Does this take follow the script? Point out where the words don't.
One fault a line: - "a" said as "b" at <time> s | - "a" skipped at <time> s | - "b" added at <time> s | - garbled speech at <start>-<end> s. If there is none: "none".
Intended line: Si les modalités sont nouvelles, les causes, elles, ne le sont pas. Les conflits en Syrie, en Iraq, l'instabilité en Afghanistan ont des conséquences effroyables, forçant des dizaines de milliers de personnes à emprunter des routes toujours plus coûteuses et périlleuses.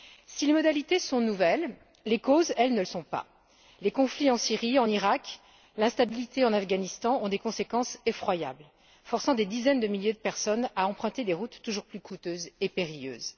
none